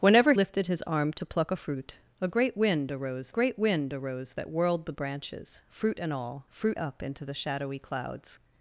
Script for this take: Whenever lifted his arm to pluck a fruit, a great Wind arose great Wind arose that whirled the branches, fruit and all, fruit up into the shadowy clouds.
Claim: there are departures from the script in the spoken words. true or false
false